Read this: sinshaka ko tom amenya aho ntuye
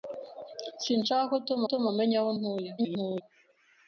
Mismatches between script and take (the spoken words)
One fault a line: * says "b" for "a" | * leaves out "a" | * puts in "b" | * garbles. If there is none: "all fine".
* puts in "tom"
* garbles